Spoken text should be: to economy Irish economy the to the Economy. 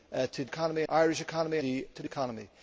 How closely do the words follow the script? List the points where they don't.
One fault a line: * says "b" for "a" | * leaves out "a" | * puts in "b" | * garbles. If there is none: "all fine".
all fine